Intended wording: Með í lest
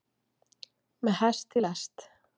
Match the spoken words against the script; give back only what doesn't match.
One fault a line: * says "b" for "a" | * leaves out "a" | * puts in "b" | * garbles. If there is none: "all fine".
* puts in "hest"